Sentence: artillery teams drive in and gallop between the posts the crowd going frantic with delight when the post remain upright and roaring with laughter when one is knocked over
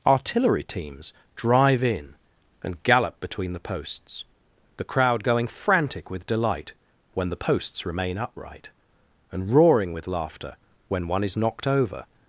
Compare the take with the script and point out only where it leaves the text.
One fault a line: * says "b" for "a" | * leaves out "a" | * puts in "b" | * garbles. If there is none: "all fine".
* says "posts" for "post"